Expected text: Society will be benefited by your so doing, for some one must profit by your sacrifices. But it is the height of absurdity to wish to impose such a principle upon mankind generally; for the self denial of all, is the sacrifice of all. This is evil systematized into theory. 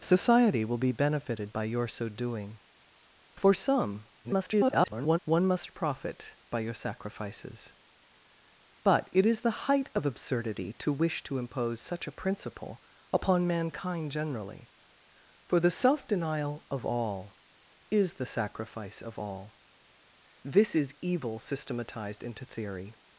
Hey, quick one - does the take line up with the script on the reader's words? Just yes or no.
no